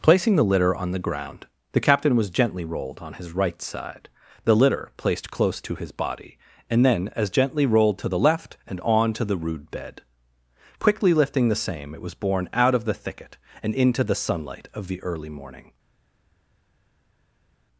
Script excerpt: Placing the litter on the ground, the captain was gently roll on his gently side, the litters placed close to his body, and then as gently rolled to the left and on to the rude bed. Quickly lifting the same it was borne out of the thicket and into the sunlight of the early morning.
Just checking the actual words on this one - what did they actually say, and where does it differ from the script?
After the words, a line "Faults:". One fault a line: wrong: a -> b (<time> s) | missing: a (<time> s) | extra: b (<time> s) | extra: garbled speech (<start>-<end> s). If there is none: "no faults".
Placing the litter on the ground, the captain was gently rolled on his right side, the litter placed close to his body, and then as gently rolled to the left and on to the rude bed. Quickly lifting the same it was borne out of the thicket and into the sunlight of the early morning.
Faults:
wrong: roll -> rolled (2.6 s)
wrong: gently -> right (3.3 s)
wrong: litters -> litter (4.5 s)